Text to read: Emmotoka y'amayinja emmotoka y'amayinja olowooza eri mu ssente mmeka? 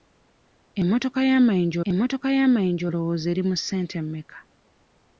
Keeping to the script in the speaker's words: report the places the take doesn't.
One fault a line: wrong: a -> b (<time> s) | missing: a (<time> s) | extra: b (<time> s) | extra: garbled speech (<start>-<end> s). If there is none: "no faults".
no faults